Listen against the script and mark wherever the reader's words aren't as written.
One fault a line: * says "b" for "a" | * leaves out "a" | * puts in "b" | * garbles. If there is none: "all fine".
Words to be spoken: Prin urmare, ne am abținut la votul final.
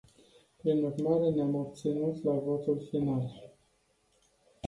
all fine